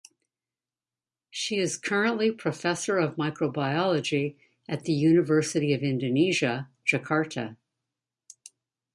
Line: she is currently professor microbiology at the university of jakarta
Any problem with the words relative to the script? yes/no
yes